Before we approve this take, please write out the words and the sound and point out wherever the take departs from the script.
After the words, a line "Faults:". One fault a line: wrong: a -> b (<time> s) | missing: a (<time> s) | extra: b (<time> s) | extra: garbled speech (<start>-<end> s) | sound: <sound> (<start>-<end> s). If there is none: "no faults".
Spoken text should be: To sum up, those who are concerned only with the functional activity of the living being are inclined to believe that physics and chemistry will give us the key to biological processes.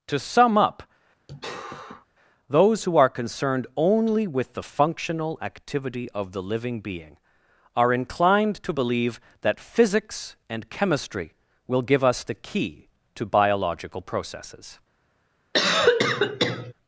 To sum up, those who are concerned only with the functional activity of the living being are inclined to believe that physics and chemistry will give us the key to biological processes.
Faults:
sound: sigh (1.3-2.1 s)
sound: cough (15.5-16.7 s)